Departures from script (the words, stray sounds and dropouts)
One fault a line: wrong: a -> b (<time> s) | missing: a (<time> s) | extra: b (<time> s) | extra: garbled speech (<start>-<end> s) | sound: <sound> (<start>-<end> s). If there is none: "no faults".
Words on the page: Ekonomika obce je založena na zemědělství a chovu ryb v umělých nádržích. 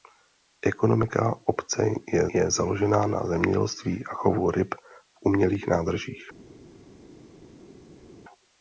extra: je (2.3 s)